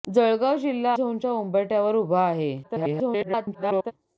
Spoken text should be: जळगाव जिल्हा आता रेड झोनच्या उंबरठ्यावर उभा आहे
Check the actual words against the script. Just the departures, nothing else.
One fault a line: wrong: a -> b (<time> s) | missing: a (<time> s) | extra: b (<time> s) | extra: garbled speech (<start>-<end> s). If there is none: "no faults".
missing: आता रेड (0.9 s)
extra: garbled speech (2.6-3.9 s)